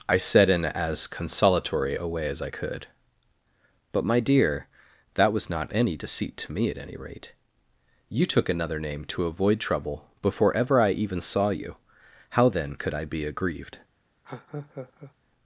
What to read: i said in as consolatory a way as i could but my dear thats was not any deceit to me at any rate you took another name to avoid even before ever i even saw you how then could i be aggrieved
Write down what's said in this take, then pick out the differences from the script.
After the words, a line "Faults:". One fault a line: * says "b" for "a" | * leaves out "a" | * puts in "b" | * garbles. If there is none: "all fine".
i said in as consolatory a way as i could but my dear that was not any deceit to me at any rate you took another name to avoid trouble before ever i even saw you how then could i be aggrieved
Faults:
* says "that" for "thats"
* says "trouble" for "even"